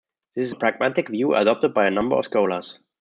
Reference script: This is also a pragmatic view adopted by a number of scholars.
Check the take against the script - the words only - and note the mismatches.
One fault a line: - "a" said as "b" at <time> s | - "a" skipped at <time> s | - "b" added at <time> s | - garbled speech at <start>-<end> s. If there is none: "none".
- "also" skipped at 0.6 s